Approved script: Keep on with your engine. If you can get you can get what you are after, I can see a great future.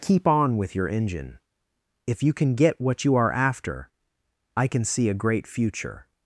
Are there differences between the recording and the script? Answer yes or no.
yes